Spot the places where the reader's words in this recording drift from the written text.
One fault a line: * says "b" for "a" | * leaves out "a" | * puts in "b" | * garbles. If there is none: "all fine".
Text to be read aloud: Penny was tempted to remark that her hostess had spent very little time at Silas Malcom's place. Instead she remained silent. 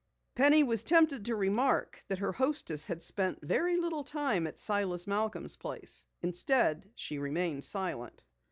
all fine